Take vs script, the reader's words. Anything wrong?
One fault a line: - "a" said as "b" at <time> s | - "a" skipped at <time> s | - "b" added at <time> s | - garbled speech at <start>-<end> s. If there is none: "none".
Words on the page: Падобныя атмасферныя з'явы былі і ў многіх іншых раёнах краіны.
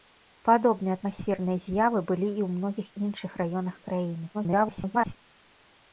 - garbled speech at 4.3-5.2 s